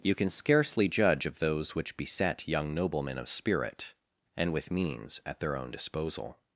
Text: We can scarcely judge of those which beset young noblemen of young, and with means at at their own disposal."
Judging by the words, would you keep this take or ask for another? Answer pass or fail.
fail